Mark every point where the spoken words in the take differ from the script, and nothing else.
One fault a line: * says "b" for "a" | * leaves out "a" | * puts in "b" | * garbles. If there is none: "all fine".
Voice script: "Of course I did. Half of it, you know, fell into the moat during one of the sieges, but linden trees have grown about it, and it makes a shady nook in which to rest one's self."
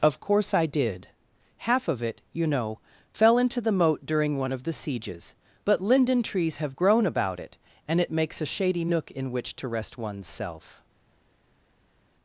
all fine